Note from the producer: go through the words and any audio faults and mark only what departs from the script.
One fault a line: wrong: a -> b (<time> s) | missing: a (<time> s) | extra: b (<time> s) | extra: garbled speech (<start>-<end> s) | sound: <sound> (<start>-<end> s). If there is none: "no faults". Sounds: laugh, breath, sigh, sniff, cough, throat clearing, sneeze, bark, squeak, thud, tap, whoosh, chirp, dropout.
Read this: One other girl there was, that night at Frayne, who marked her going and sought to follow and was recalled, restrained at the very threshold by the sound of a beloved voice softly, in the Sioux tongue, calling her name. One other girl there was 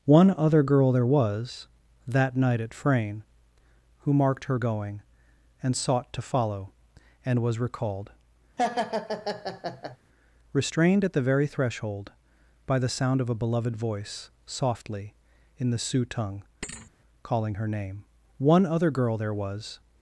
sound: laugh (8.6-10.0 s)
sound: thud (16.6-16.9 s)